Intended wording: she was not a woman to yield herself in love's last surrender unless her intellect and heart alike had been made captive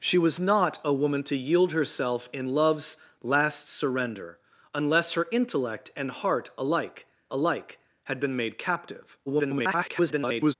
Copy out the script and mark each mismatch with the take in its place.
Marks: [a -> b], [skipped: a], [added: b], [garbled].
she was not a woman to yield herself in love's last surrender unless her intellect and heart alike [added: alike] had been made captive [garbled]